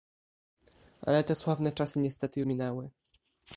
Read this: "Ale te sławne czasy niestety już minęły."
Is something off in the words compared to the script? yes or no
yes